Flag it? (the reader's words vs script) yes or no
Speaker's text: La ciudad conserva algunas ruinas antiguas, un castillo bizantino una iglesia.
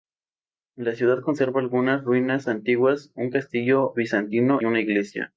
no